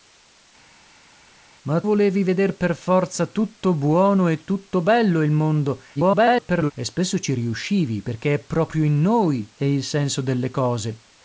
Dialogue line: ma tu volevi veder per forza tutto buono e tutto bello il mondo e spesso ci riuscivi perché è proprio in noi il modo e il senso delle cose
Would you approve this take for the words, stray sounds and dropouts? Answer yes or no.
no